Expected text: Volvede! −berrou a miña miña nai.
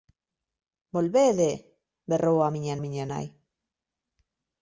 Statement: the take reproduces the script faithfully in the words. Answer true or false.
true